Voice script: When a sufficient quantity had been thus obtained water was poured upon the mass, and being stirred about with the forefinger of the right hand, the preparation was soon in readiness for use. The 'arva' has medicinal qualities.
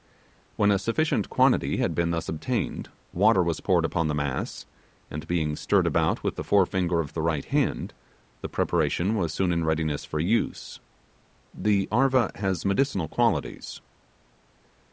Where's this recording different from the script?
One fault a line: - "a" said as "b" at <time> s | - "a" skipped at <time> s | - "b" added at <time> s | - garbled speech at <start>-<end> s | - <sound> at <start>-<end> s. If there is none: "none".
none